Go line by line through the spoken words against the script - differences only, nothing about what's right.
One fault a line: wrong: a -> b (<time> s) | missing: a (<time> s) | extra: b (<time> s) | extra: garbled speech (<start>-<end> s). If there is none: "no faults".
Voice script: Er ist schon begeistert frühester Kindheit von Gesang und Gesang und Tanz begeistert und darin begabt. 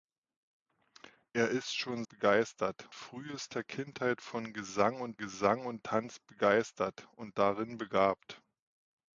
no faults